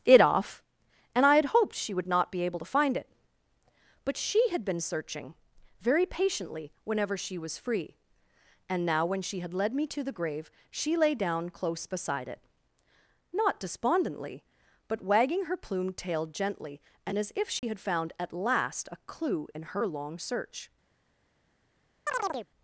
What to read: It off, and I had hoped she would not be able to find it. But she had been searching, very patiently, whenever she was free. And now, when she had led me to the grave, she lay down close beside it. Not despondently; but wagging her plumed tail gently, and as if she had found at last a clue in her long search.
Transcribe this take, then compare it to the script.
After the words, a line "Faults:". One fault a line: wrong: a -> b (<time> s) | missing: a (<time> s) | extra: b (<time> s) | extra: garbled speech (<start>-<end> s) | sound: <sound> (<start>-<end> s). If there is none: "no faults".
It off, and I had hoped she would not be able to find it. But she had been searching, very patiently, whenever she was free. And now, when she had led me to the grave, she lay down close beside it. Not despondently; but wagging her plumed tail gently, and as if she had found at last a clue in her long search.
Faults:
sound: dropout (17.6-17.6 s)
sound: chirp (22.1-22.5 s)